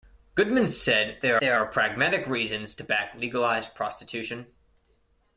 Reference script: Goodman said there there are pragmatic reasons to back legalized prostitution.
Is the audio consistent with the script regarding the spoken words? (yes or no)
yes